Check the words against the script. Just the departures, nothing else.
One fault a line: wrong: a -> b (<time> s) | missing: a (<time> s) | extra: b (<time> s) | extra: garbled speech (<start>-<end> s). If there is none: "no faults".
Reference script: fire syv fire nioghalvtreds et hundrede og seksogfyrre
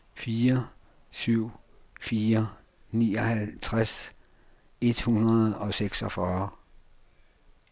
no faults